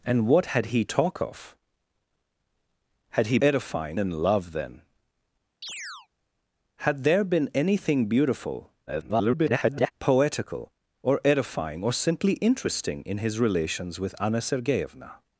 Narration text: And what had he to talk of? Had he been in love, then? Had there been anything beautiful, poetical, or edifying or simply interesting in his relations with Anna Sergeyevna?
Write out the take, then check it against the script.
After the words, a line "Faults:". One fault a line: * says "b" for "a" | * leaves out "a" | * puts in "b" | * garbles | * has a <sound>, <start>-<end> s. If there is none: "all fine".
And what had he talk of? Had he edifying in love, then? Had there been anything beautiful, [garbled] poetical, or edifying or simply interesting in his relations with Anna Sergeyevna?
Faults:
* leaves out "to"
* says "edifying" for "been"
* has a chirp, 5.6-6.1 s
* garbles